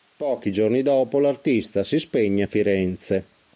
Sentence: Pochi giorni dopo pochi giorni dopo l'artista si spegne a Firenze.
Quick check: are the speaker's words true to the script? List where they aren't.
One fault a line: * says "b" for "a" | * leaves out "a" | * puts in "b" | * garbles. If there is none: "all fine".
* leaves out "pochi giorni dopo"